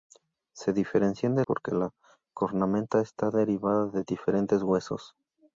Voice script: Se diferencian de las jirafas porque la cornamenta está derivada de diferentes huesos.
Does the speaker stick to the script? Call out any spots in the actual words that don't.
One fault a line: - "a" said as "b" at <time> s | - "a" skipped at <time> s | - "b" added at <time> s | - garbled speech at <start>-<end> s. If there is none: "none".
- "las jirafas" skipped at 1.4 s